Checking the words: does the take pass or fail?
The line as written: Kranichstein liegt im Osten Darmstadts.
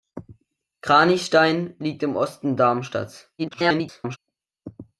fail